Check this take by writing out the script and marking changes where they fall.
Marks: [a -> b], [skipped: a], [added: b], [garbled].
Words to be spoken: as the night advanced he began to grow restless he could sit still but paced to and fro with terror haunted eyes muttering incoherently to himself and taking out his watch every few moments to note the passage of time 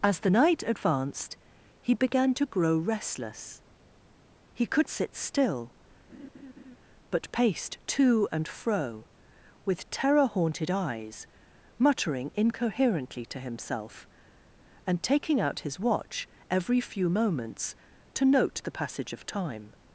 as the night advanced he began to grow restless he could sit still but paced to and fro with terror haunted eyes muttering incoherently to himself and taking out his watch every few moments to note the passage of time